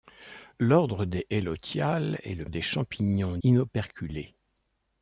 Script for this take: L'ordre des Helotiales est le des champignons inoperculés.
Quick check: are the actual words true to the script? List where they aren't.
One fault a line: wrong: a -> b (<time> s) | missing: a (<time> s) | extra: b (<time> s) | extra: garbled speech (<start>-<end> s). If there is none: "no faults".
no faults